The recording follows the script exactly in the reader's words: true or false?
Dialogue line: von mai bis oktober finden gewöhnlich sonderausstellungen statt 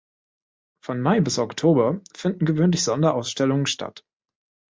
true